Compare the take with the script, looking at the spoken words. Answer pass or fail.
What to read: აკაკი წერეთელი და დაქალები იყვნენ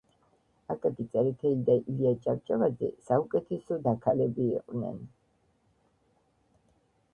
fail